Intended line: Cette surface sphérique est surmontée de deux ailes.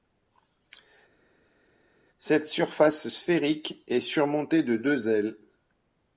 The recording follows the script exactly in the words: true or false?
true